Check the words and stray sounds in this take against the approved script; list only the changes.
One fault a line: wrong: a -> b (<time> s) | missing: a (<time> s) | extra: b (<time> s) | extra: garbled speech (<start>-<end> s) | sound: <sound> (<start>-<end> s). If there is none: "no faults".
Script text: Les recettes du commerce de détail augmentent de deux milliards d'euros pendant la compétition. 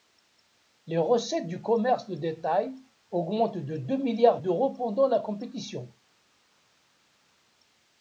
no faults